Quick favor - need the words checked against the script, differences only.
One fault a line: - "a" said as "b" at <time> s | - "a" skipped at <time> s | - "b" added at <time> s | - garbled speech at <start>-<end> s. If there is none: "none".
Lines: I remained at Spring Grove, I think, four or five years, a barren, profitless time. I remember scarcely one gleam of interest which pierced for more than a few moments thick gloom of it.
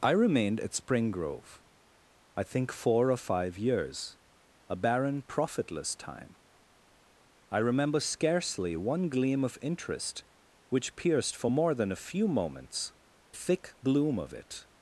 none